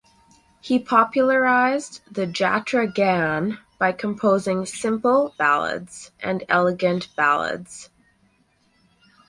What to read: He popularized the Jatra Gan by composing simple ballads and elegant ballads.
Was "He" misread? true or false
false